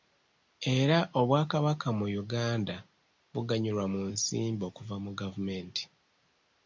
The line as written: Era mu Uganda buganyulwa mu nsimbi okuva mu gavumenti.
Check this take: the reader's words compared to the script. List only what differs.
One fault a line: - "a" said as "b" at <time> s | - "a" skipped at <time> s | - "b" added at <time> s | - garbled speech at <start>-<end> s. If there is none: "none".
- "obwakabaka" added at 1.2 s